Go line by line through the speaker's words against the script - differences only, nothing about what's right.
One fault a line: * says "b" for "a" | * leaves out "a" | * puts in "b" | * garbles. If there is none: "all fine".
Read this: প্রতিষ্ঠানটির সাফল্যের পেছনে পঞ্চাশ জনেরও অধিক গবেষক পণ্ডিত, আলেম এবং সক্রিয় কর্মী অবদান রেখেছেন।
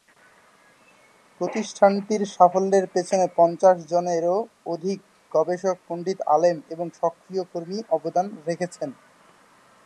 all fine